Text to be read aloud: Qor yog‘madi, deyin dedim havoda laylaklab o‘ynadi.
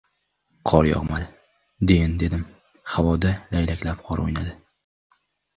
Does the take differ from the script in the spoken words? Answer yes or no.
yes